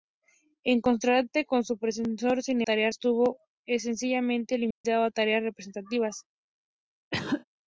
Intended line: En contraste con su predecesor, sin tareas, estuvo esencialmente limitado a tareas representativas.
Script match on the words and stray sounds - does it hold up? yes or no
no